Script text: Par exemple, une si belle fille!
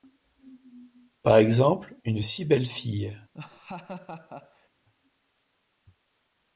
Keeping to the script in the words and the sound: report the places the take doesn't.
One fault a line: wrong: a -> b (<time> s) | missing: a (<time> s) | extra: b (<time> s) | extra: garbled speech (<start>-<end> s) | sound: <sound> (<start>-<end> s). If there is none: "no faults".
sound: laugh (3.3-4.7 s)